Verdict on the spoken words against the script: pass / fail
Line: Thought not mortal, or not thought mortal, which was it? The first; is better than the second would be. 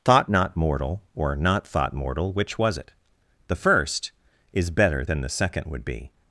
pass